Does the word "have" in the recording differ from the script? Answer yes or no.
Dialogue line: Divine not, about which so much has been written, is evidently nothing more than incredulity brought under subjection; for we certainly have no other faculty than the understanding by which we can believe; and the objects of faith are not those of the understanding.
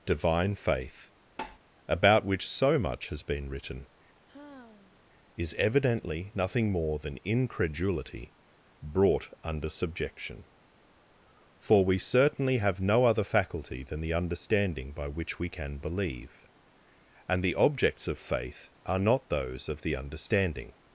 no